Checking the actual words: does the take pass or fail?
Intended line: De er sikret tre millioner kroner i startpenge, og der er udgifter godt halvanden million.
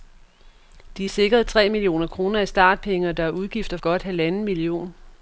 pass